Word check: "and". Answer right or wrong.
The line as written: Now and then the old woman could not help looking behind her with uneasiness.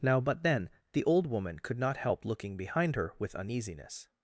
wrong